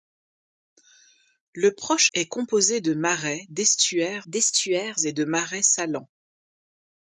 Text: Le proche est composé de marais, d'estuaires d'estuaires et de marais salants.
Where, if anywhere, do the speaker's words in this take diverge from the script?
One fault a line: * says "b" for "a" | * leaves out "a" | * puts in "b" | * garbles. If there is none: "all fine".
all fine